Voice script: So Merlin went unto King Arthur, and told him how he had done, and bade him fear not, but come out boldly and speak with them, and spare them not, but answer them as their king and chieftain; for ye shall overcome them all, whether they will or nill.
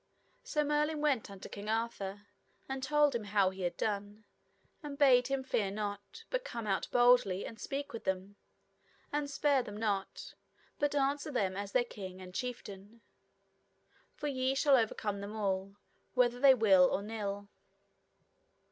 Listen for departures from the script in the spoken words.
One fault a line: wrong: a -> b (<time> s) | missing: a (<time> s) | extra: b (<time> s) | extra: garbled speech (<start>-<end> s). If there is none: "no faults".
no faults